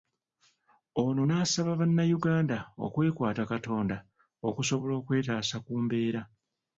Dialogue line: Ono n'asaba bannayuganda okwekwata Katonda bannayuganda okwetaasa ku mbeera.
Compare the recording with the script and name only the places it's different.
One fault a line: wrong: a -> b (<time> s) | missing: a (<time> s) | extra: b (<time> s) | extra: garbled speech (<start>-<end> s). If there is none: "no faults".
wrong: bannayuganda -> okusobola (4.5 s)